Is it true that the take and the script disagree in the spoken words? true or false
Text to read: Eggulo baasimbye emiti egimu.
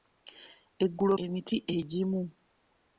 true